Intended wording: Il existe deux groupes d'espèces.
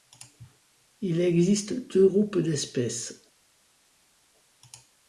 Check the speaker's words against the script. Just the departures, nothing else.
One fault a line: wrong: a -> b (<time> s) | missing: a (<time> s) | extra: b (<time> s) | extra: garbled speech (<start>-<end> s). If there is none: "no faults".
no faults